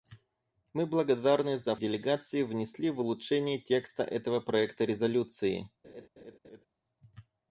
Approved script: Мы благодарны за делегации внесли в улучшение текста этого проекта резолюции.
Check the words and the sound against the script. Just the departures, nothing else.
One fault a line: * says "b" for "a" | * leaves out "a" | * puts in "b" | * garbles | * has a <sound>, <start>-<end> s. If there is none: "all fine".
* has a laugh, 5.8-6.7 s